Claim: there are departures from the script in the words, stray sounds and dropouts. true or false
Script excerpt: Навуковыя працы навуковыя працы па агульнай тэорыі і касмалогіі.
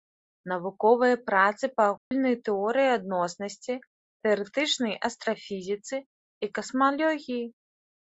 true